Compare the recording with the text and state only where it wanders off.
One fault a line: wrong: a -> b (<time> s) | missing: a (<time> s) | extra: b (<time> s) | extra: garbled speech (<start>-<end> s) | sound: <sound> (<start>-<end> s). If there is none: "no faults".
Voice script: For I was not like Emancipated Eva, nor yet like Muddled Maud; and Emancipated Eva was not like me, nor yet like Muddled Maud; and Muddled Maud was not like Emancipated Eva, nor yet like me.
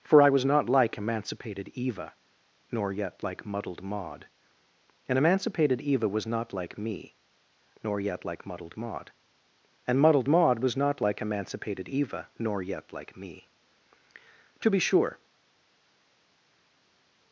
extra: To be sure (14.6 s)